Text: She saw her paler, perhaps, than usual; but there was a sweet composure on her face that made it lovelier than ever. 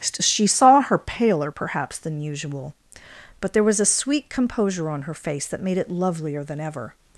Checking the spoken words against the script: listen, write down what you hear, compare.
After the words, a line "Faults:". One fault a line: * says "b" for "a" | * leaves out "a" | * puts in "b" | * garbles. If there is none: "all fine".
She saw her paler, perhaps, than usual; but there was a sweet composure on her face that made it lovelier than ever.
Faults:
all fine